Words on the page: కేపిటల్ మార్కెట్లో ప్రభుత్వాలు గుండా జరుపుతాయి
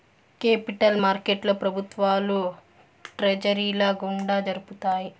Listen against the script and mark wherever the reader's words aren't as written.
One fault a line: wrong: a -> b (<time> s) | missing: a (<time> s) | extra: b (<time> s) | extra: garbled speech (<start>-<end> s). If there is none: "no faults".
extra: ట్రెజరీల (3.2 s)